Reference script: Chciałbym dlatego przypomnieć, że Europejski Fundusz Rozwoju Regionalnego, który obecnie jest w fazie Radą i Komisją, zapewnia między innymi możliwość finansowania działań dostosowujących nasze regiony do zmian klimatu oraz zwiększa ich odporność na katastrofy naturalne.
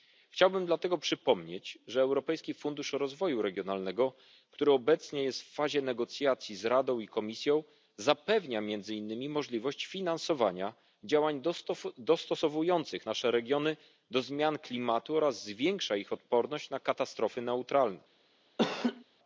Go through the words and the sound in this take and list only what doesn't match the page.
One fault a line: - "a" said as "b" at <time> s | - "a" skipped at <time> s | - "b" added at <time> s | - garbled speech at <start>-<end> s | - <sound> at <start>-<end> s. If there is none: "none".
- "negocjacji z" added at 5.8 s
- laugh at 18.6-19.0 s